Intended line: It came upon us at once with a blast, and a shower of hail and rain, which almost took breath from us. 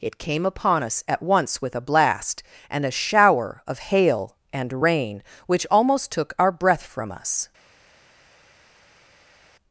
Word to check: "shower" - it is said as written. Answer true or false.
true